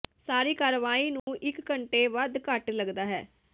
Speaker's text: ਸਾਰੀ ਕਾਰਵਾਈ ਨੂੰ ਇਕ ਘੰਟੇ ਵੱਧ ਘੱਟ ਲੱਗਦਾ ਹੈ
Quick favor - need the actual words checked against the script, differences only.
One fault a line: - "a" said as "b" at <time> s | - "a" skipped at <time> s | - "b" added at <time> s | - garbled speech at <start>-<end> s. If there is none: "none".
none